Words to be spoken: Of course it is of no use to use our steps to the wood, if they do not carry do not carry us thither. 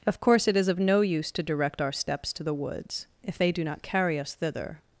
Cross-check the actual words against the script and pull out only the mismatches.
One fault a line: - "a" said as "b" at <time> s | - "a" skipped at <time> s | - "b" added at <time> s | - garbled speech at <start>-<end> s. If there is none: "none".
- "use" said as "direct" at 1.4 s
- "wood" said as "woods" at 2.5 s
- "do not carry" skipped at 4.2 s